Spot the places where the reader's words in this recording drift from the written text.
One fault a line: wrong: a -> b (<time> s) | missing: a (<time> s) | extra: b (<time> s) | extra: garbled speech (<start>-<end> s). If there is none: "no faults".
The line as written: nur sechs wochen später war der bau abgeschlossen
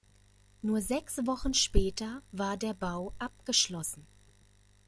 no faults